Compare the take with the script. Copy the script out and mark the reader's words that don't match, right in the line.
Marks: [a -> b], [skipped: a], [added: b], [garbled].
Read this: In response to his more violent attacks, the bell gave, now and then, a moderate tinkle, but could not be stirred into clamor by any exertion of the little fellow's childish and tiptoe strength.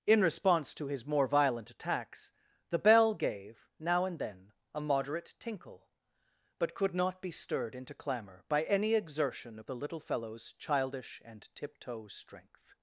In response to his more violent attacks, the bell gave, now and then, a moderate tinkle, but could not be stirred into clamor by any exertion of the little fellow's childish and tiptoe strength.